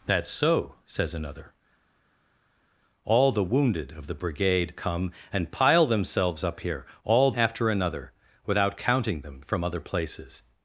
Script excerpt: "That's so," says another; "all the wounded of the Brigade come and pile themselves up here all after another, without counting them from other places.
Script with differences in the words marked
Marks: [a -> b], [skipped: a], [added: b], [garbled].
"That's so," says another; "all the wounded of the Brigade come and pile themselves up here all after another, without counting them from other places.